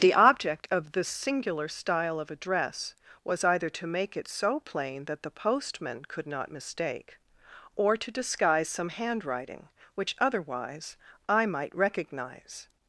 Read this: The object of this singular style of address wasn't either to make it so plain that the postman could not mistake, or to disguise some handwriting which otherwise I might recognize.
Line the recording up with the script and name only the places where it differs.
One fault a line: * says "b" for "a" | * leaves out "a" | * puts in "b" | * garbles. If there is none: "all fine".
* says "was" for "wasn't"